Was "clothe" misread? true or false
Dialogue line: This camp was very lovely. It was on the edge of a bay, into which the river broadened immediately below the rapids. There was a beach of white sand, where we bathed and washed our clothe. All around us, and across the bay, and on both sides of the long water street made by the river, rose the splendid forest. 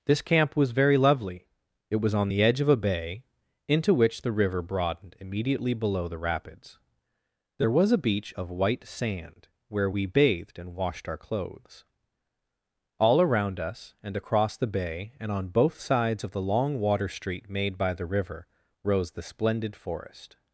true